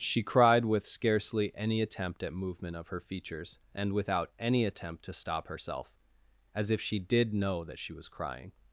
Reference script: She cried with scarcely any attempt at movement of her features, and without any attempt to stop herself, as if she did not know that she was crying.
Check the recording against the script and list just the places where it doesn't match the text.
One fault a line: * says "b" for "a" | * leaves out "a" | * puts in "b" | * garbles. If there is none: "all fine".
* leaves out "not"